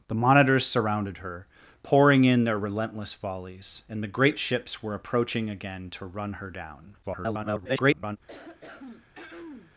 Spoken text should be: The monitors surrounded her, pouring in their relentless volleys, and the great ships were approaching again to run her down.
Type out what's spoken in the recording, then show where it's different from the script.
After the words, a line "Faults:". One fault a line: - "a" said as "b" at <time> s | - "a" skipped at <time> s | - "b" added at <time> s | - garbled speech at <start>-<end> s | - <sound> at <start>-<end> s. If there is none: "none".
The monitors surrounded her, pouring in their relentless volleys, and the great ships were approaching again to run her down. [garbled]
Faults:
- garbled speech at 7.0-8.2 s
- throat clearing at 8.3-9.7 s